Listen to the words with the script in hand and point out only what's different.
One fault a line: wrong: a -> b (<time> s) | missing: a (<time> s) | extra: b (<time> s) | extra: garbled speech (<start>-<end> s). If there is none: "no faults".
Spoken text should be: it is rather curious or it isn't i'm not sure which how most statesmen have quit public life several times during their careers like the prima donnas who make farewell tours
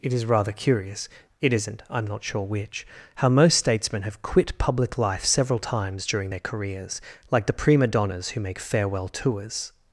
missing: or (1.1 s)